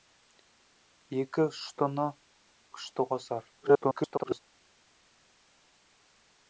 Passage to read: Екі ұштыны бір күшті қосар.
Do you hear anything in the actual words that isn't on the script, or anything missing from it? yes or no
yes